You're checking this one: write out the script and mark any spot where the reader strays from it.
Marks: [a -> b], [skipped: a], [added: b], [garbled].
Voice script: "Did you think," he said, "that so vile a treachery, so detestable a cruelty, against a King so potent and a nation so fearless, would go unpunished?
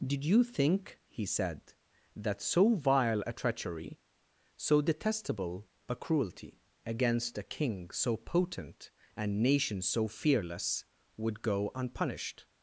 "Did you think," he said, "that so vile a treachery, so detestable a cruelty, against a King so potent and [skipped: a] nation so fearless, would go unpunished?